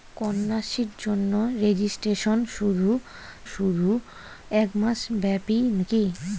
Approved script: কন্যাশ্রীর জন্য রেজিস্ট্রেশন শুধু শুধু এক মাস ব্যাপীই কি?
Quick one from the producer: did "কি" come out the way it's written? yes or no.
yes